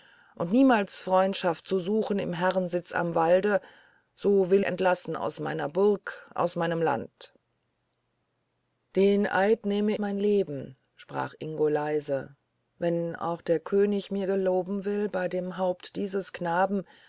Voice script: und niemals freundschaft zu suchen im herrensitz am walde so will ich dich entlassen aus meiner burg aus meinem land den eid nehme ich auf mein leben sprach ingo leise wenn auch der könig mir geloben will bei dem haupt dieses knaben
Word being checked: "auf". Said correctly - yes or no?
no